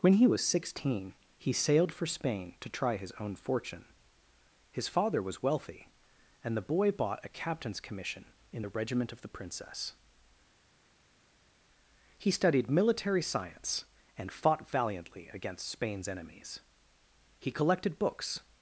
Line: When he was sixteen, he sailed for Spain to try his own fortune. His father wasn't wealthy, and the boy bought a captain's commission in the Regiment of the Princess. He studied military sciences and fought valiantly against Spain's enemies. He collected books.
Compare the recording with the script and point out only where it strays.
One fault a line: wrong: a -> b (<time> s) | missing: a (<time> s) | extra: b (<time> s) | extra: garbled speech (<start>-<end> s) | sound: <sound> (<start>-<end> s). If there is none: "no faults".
wrong: wasn't -> was (5.2 s)
wrong: sciences -> science (13.2 s)